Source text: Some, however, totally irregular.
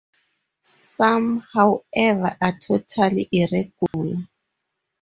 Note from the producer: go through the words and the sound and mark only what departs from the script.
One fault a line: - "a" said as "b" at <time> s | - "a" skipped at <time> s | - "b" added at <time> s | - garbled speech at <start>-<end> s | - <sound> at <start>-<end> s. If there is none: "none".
- "are" added at 2.4 s
- dropout at 3.9-3.9 s